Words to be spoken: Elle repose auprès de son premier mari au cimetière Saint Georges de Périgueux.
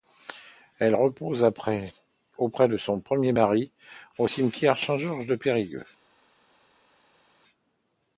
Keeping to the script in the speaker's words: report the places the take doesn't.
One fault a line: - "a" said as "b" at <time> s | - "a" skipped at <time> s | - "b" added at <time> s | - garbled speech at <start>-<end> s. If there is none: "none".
none